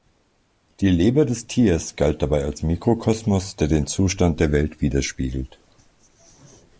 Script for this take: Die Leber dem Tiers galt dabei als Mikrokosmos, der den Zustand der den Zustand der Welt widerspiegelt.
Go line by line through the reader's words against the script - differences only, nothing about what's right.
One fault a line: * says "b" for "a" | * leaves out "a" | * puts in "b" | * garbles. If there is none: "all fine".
* says "des" for "dem"
* leaves out "den Zustand der"